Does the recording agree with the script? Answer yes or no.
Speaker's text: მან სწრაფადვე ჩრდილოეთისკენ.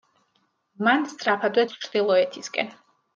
yes